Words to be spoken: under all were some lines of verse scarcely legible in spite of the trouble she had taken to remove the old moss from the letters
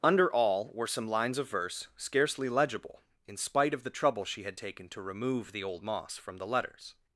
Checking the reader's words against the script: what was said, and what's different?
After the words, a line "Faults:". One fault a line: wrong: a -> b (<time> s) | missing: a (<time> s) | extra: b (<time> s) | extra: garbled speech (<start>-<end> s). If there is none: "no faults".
under all were some lines of verse scarcely legible in spite of the trouble she had taken to remove the old moss from the letters
Faults:
no faults